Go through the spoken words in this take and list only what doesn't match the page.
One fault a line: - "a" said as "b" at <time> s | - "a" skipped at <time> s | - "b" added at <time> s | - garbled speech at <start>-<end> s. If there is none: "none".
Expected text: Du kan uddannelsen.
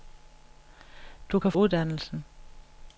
none